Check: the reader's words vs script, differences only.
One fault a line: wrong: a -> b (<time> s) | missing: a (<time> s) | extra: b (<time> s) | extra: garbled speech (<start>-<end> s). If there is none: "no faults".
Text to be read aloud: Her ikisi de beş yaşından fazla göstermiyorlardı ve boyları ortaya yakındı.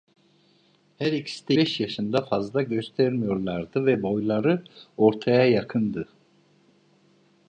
no faults